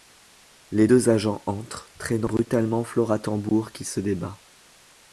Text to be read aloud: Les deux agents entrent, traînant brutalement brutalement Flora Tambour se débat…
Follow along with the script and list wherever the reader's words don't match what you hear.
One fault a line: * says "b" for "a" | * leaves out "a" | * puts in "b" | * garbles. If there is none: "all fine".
* leaves out "brutalement"
* puts in "qui"